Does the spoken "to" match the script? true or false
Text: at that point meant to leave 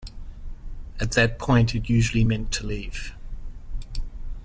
true